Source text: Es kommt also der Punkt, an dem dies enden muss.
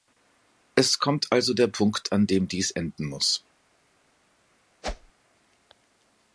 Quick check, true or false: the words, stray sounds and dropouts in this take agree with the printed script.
false